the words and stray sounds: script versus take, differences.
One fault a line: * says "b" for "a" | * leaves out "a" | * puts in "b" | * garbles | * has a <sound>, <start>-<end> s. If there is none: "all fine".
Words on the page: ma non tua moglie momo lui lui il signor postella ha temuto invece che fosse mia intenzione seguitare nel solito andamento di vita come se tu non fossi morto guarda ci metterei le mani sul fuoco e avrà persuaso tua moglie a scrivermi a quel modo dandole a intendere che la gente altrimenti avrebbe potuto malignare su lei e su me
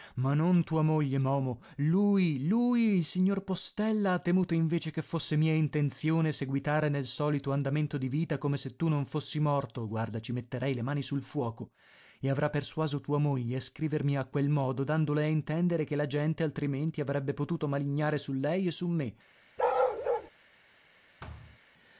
* has a bark, 19.6-20.3 s
* has a thud, 21.2-21.6 s